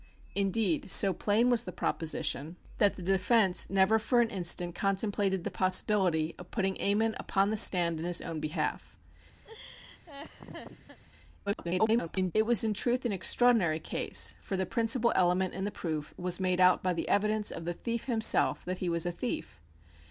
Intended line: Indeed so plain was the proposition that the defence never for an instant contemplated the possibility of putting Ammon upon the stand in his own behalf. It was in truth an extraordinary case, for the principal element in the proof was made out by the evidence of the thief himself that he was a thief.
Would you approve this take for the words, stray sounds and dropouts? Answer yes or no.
no